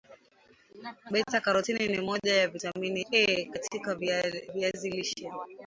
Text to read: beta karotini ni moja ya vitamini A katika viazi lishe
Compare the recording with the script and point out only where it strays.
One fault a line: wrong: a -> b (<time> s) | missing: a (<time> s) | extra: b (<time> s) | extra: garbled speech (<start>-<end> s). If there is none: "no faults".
no faults